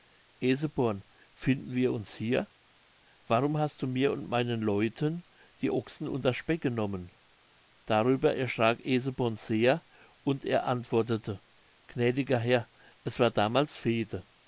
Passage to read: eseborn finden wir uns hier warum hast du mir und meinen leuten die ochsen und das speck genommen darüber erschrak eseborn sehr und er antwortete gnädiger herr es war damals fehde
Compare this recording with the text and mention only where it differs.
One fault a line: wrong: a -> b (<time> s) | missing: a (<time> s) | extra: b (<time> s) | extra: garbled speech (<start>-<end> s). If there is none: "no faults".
no faults